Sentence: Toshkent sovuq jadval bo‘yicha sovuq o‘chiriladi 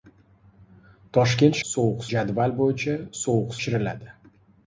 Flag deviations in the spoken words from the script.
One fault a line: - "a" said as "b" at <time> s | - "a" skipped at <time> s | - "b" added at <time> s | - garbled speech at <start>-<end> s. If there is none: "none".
none